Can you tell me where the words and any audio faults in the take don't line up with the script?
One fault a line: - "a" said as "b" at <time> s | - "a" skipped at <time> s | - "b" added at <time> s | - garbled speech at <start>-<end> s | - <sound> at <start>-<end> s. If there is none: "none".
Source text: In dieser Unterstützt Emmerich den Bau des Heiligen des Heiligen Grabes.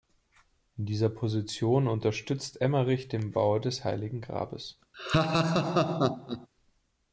- "Position" added at 1.1 s
- "des Heiligen" skipped at 4.2 s
- laugh at 4.9-6.5 s